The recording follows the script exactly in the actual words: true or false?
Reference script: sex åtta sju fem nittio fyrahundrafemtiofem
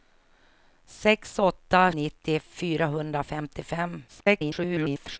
false